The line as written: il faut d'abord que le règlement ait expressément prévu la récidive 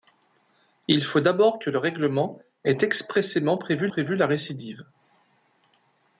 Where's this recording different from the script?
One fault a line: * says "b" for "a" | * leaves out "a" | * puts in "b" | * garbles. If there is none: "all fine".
* puts in "prévu"